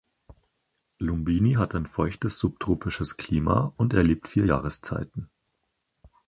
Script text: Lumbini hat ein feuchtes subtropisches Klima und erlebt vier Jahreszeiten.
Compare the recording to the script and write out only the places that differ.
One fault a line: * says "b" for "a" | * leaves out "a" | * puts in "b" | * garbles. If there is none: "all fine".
all fine